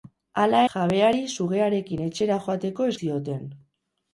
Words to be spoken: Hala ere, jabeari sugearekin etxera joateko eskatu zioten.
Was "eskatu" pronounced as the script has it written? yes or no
no